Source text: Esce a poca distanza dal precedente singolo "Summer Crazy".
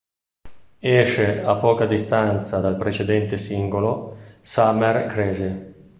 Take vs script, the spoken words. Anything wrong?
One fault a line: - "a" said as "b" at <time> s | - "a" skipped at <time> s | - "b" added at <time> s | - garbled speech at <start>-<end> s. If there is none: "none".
none